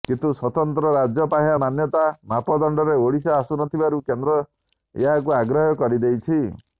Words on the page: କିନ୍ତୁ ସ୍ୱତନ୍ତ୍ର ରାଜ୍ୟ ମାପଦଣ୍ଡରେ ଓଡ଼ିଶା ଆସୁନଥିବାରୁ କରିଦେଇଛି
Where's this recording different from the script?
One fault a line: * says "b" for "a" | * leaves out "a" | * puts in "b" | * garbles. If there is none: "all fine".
* puts in "ପାହ୍ୟା ମାନ୍ୟତା"
* puts in "କେନ୍ଦ୍ର ଏହାକୁ ଅଗ୍ରାହ୍ୟ"